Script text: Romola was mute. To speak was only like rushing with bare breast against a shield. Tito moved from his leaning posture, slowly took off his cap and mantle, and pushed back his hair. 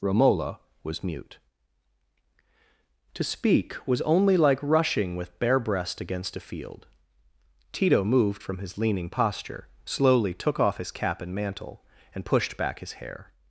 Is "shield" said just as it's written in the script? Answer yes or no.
no